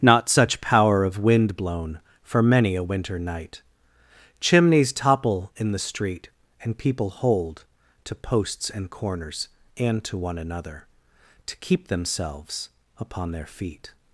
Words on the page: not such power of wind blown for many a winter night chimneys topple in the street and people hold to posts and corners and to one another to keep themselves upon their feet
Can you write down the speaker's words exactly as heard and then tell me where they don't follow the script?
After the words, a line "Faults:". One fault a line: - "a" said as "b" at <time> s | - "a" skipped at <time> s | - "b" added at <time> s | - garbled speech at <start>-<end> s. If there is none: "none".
not such power of wind blown for many a winter night chimneys topple in the street and people hold to posts and corners and to one another to keep themselves upon their feet
Faults:
none